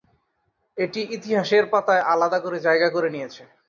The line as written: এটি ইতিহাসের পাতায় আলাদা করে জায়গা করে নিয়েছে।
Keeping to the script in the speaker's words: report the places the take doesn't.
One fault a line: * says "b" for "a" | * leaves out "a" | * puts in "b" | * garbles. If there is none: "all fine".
all fine